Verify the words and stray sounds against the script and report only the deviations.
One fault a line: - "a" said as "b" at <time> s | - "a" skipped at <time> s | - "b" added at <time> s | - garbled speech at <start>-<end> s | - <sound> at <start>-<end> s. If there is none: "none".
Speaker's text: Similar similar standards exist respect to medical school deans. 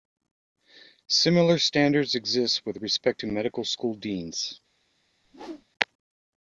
- "similar" skipped at 1.6 s
- "with" added at 2.6 s
- whoosh at 5.2-5.7 s